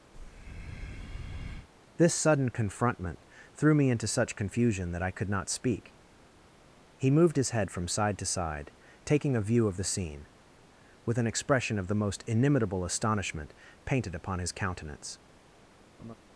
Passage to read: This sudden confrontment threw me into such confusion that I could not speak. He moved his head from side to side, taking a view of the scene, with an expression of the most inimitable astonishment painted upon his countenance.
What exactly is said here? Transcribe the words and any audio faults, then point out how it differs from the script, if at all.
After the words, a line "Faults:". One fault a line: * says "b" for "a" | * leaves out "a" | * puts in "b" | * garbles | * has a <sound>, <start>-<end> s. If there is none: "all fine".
This sudden confrontment threw me into such confusion that I could not speak. He moved his head from side to side, taking a view of the scene, with an expression of the most inimitable astonishment painted upon his countenance.
Faults:
* has a breath, 0.1-1.7 s
* has a laugh, 16.0-16.2 s